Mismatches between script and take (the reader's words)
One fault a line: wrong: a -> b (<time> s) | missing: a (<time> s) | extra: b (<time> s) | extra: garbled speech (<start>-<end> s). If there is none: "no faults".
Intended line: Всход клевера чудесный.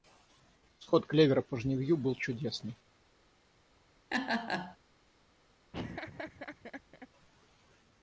extra: по жнивью был (1.4 s)